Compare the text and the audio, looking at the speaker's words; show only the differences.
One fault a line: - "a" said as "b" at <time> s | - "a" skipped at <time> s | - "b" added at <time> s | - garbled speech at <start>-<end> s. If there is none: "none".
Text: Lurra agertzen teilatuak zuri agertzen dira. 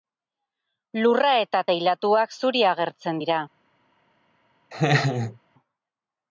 - "agertzen" said as "eta" at 1.4 s